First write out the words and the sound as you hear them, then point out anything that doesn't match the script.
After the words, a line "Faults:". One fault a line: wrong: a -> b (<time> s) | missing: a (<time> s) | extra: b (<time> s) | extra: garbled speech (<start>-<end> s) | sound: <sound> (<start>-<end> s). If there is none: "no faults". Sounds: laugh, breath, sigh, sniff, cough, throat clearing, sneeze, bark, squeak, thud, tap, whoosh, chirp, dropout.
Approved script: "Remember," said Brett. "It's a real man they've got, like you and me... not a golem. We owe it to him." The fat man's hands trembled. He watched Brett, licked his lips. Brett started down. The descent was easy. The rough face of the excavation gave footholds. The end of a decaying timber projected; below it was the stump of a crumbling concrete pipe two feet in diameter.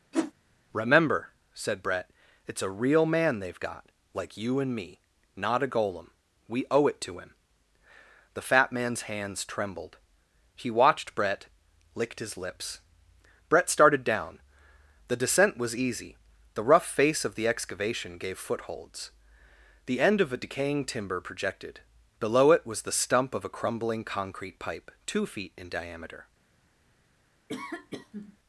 "Remember," said Brett. "It's a real man they've got, like you and me... not a golem. We owe it to him." The fat man's hands trembled. He watched Brett, licked his lips. Brett started down. The descent was easy. The rough face of the excavation gave footholds. The end of a decaying timber projected; below it was the stump of a crumbling concrete pipe two feet in diameter.
Faults:
sound: whoosh (0.1-0.3 s)
sound: sneeze (27.5-28.4 s)